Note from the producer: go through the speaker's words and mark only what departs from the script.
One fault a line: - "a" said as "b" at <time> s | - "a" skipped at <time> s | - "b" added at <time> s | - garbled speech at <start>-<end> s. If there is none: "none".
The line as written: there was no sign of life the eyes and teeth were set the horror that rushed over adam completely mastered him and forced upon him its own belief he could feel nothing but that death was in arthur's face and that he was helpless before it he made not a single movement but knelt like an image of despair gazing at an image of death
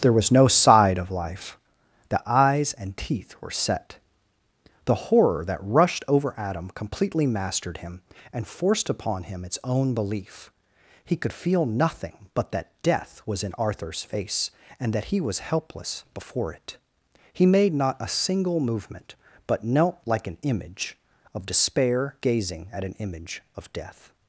- "sign" said as "side" at 0.5 s